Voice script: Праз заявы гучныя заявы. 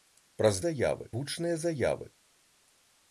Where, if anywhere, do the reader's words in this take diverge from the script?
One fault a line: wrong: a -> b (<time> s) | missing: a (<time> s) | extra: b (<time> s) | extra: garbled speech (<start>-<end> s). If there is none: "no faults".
no faults